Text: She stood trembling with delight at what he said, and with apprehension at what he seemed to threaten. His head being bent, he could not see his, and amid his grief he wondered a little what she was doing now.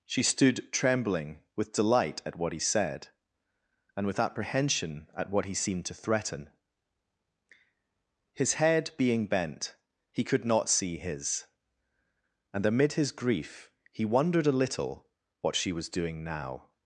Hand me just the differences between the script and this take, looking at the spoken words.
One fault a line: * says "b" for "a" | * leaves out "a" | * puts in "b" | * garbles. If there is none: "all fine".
all fine